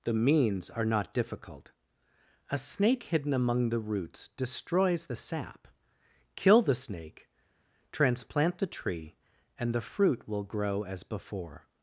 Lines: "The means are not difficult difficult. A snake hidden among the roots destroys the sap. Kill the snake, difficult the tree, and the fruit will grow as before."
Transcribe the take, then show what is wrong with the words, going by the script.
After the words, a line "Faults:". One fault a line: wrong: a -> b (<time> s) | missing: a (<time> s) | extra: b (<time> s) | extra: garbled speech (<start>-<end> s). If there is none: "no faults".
"The means are not difficult. A snake hidden among the roots destroys the sap. Kill the snake, transplant the tree, and the fruit will grow as before."
Faults:
missing: difficult (1.7 s)
wrong: difficult -> transplant (7.9 s)